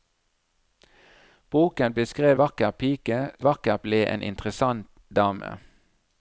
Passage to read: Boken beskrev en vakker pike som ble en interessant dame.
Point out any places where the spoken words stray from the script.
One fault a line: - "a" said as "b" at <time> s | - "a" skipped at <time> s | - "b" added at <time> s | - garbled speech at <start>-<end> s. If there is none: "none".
- "en" skipped at 2.4 s
- "som" said as "vakker" at 3.4 s